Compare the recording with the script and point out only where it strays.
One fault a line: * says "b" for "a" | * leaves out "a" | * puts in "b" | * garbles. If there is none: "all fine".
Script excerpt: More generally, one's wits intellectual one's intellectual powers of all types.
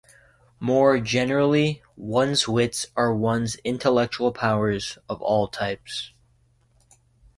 * says "are" for "intellectual"